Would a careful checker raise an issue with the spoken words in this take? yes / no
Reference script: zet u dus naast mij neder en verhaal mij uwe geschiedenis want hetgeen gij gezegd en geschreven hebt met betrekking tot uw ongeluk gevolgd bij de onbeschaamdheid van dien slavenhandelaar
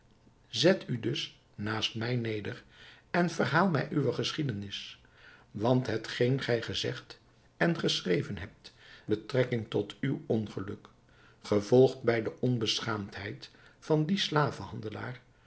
yes